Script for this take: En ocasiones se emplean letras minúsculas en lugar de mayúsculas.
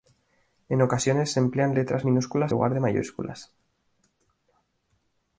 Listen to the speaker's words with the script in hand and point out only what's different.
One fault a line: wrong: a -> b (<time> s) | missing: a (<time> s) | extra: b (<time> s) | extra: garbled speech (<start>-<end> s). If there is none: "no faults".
missing: en (2.5 s)